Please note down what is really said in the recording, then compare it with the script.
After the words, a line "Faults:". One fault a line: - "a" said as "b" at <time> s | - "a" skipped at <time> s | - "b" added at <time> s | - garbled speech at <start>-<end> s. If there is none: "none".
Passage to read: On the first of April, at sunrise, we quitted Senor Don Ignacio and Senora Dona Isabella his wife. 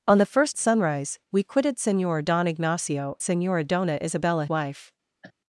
On the first sunrise, we quitted Senor Don Ignacio Senora Dona Isabella wife.
Faults:
- "of April at" skipped at 0.6 s
- "and" skipped at 3.2 s
- "his" skipped at 4.5 s